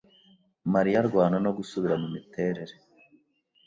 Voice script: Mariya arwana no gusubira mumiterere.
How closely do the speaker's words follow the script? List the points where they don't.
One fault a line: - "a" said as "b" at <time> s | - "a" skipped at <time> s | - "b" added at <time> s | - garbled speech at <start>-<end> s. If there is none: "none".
none